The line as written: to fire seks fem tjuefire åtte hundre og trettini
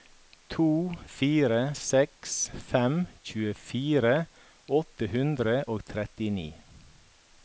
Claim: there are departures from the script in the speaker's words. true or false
false